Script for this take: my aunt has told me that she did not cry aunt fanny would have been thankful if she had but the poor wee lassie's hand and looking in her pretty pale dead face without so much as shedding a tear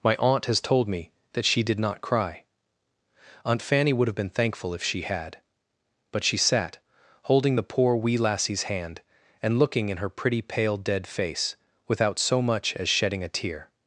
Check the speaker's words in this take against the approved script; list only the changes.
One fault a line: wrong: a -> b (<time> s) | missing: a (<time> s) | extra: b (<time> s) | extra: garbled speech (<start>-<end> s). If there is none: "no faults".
extra: she sat holding (6.2 s)